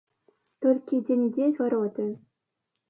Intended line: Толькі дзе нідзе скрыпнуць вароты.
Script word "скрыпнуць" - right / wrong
wrong